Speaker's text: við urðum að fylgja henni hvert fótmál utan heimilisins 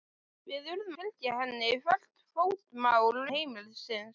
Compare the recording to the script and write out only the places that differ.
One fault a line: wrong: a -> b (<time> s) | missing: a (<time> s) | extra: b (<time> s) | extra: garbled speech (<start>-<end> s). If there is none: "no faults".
missing: að (0.9 s)
missing: utan (3.2 s)